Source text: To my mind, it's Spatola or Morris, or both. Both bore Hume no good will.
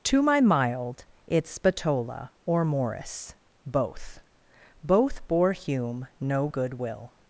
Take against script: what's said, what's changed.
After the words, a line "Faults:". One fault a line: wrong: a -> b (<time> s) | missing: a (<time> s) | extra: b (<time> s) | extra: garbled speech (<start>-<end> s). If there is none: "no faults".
To my mild, it's Spatola or Morris, both. Both bore Hume no good will.
Faults:
wrong: mind -> mild (0.4 s)
missing: or (3.3 s)